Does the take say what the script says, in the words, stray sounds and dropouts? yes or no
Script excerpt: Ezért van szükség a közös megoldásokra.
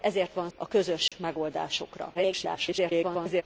no